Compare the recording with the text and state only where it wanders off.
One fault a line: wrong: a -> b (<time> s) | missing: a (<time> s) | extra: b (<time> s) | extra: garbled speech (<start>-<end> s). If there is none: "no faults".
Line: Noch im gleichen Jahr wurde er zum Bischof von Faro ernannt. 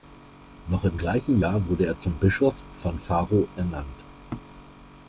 no faults